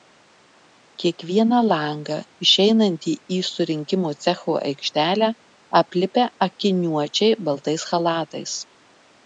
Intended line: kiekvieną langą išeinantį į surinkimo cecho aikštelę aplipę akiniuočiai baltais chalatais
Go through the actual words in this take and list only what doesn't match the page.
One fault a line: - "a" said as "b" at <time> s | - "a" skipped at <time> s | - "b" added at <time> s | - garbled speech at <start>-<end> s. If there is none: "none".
none